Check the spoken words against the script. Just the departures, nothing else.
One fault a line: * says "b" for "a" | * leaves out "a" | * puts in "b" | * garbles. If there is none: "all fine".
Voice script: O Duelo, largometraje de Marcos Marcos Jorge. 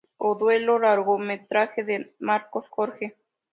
* leaves out "Marcos"